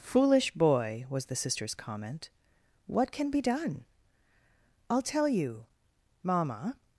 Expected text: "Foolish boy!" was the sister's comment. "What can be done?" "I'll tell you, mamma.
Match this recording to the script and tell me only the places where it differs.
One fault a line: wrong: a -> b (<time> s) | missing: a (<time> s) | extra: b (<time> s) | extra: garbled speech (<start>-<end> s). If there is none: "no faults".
no faults